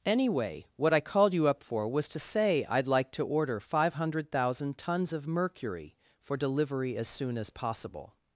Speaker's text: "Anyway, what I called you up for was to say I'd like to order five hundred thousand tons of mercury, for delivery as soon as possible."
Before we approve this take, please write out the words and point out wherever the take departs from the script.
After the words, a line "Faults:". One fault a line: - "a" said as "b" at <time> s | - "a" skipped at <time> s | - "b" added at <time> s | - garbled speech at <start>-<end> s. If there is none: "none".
"Anyway, what I called you up for was to say I'd like to order five hundred thousand tons of mercury, for delivery as soon as possible."
Faults:
none